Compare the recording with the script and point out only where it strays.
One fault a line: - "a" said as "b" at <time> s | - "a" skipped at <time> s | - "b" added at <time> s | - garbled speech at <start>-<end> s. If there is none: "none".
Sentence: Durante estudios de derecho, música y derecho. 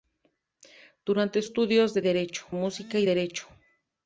none